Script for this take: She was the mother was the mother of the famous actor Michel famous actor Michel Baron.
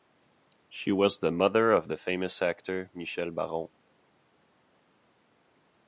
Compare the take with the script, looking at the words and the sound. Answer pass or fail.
fail